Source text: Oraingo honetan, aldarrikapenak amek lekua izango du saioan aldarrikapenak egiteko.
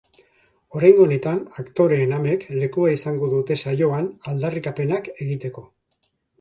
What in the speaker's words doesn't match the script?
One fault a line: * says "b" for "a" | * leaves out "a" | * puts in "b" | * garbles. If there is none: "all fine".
* says "aktoreen" for "aldarrikapenak"
* says "dute" for "du"